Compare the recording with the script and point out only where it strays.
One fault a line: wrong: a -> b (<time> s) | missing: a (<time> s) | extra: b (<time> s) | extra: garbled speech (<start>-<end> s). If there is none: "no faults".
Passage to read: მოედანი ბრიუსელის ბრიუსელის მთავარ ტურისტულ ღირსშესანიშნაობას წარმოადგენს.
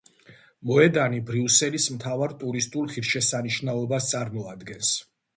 missing: ბრიუსელის (1.9 s)